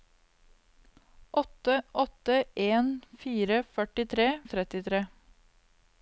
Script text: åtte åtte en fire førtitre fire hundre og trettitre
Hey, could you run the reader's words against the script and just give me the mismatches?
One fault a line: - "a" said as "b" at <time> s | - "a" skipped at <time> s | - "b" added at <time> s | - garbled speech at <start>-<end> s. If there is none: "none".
- "fire hundre" skipped at 4.3 s